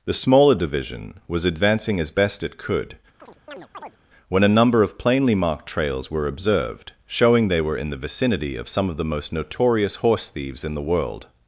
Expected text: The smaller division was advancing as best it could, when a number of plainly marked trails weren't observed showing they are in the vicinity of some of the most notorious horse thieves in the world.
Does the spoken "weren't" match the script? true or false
false